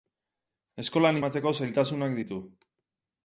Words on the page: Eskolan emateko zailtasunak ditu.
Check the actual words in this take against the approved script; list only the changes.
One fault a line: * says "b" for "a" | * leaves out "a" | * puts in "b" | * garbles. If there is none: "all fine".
all fine